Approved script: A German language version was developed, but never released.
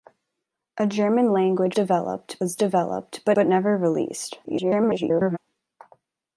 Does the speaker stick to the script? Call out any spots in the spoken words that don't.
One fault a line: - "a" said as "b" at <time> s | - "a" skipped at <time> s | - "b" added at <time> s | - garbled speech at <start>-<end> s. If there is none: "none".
- "version" said as "developed" at 1.7 s
- "but" added at 3.3 s
- garbled speech at 4.4-5.4 s